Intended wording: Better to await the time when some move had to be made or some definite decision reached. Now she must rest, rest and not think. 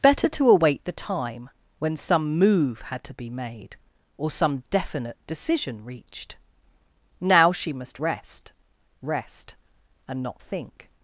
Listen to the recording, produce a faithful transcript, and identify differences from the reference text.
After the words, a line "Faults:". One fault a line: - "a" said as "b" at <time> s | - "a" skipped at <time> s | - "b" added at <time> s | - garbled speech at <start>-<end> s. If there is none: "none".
Better to await the time when some move had to be made or some definite decision reached. Now she must rest, rest and not think.
Faults:
none